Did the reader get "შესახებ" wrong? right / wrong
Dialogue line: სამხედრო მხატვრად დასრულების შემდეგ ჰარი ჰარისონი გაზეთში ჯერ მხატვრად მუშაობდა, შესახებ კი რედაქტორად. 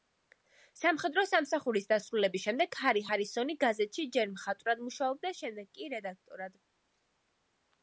wrong